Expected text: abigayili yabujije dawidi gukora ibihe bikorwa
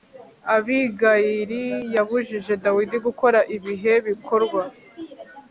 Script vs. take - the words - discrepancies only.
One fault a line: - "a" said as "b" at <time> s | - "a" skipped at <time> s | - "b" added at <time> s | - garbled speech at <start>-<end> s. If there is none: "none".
none